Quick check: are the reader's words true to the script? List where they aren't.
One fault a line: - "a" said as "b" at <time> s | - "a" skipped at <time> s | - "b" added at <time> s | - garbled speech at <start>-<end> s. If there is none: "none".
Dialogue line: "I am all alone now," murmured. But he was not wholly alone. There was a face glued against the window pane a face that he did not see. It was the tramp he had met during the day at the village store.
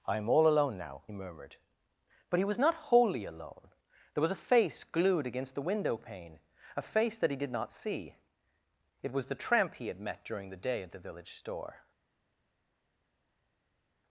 none